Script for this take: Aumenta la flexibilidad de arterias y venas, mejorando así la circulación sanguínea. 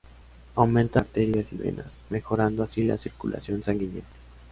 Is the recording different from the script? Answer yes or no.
yes